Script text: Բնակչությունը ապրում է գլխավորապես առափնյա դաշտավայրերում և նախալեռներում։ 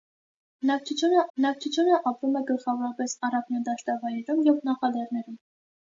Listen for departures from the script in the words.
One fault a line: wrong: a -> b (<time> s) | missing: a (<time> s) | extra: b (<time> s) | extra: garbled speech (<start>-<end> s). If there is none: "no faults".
extra: բնակչությունը (1.4 s)